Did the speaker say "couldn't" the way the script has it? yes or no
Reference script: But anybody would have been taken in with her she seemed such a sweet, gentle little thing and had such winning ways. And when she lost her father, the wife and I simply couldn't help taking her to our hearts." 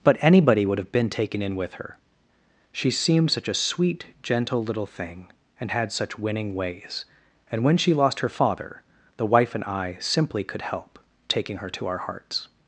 no